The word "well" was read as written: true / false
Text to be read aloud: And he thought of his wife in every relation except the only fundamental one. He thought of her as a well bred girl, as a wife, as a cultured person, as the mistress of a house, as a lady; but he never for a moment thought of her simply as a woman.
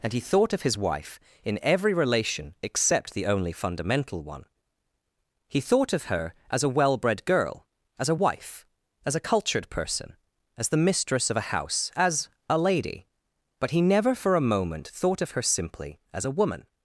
true